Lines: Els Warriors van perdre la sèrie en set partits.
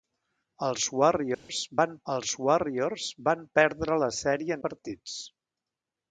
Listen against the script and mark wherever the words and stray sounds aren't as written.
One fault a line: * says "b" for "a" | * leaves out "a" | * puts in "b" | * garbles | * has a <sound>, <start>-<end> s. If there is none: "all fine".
* has a dropout, 1.3-1.5 s
* puts in "els Warriors van"
* leaves out "en set"